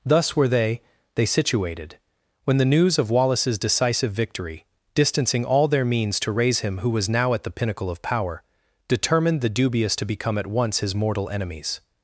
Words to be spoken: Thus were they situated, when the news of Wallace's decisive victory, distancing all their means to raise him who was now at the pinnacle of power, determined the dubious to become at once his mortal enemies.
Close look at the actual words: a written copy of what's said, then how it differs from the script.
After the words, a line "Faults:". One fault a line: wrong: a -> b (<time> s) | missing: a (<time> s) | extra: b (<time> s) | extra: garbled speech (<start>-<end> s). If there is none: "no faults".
Thus were they they situated, when the news of Wallace's decisive victory, distancing all their means to raise him who was now at the pinnacle of power, determined the dubious to become at once his mortal enemies.
Faults:
extra: they (1.1 s)